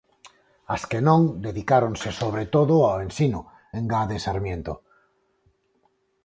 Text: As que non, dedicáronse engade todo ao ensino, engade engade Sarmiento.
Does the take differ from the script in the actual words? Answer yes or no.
yes